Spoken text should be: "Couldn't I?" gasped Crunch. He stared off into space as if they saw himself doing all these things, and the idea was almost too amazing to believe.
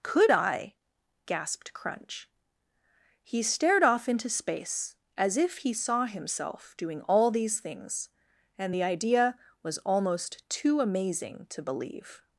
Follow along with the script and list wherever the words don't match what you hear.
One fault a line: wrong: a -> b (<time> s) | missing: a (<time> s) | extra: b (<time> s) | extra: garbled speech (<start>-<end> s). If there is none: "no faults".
wrong: Couldn't -> Could (0.0 s)
wrong: they -> he (5.6 s)